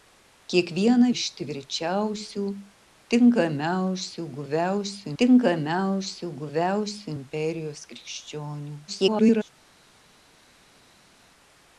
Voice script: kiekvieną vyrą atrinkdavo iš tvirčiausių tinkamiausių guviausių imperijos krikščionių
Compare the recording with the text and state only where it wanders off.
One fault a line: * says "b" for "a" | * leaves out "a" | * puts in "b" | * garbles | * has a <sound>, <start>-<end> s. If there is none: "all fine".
* says "iš tvirčiausių tinkamiausių guviausių" for "vyrą atrinkdavo iš tvirčiausių"
* garbles